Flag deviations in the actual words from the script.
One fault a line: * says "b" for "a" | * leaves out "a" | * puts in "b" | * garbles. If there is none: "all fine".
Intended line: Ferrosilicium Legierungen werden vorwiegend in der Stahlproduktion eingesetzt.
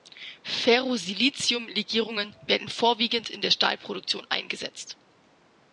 all fine